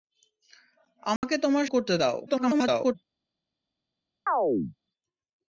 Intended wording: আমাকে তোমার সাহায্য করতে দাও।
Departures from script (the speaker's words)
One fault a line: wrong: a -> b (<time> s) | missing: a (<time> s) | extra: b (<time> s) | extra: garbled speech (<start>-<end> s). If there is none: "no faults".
missing: সাহায্য (1.6 s)
extra: garbled speech (2.3-3.0 s)